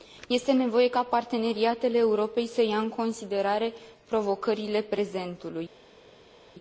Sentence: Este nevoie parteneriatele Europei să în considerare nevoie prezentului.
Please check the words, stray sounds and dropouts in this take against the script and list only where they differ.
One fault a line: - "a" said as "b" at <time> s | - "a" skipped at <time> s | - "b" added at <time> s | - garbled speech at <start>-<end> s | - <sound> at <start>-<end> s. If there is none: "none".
- "ca" added at 0.9 s
- "ia" added at 2.6 s
- "nevoie" said as "provocările" at 4.0 s